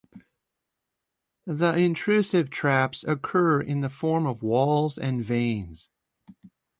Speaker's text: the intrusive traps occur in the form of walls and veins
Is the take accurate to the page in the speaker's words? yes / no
yes